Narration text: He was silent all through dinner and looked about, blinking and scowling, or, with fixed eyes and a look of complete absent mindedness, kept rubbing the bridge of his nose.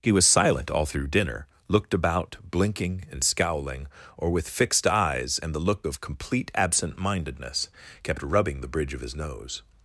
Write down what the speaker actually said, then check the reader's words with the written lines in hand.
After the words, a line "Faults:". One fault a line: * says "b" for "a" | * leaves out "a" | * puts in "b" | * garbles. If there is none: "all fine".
He was silent all through dinner looked about, blinking and scowling, or, with fixed eyes and the look of complete absent mindedness, kept rubbing the bridge of his nose.
Faults:
* leaves out "and"
* says "the" for "a"